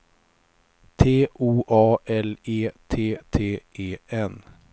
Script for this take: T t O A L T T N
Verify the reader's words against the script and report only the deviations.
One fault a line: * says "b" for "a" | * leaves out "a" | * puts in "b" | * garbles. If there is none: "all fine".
* leaves out "t"
* puts in "E"
* puts in "E"